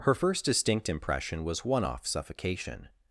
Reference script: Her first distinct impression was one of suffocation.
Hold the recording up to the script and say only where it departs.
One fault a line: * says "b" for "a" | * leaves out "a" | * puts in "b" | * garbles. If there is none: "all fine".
* says "off" for "of"